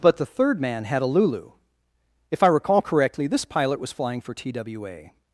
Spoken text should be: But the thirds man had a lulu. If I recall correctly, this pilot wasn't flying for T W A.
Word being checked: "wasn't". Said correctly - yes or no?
no